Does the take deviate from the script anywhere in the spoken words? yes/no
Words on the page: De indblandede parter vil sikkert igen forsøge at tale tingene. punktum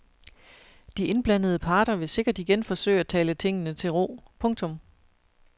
yes